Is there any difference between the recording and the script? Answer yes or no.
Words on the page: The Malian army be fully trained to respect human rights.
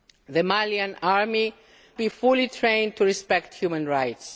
no